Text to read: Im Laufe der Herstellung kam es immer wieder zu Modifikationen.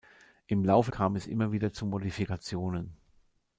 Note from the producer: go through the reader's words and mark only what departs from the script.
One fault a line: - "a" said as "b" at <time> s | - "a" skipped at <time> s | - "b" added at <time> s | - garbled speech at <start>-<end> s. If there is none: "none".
- "der Herstellung" skipped at 0.9 s